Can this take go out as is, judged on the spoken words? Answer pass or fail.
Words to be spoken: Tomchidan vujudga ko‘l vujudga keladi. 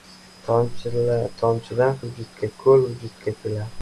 pass